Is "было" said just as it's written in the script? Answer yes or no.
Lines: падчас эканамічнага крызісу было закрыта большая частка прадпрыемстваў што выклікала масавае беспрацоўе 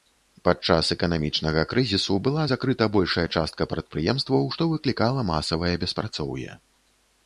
no